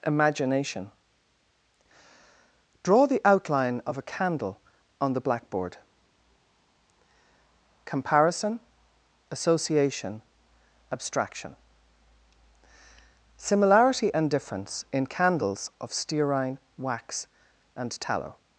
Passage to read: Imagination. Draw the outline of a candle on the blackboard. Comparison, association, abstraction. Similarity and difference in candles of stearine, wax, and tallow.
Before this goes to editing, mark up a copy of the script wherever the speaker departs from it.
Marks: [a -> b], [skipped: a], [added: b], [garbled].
Imagination. Draw the outline of a candle on the blackboard. Comparison, association, abstraction. Similarity and difference in candles of stearine, wax, and tallow.